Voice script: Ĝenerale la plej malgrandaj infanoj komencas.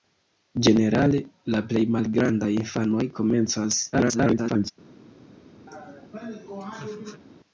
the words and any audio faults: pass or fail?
fail